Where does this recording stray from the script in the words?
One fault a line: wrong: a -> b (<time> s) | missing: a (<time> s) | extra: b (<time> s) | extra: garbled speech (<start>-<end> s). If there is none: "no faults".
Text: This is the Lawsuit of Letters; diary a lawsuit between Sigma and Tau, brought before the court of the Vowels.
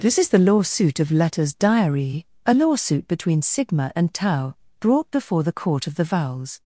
no faults